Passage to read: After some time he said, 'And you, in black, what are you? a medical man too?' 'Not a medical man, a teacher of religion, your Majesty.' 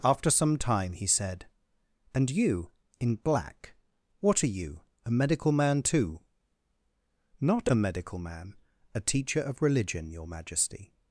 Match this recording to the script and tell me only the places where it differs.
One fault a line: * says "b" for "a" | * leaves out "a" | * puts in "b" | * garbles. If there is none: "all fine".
all fine